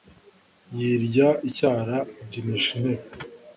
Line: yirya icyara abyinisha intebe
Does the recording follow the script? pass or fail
pass